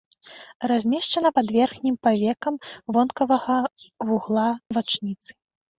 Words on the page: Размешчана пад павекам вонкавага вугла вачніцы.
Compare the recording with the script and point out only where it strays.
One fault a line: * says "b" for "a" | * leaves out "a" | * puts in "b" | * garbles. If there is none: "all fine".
* puts in "верхнім"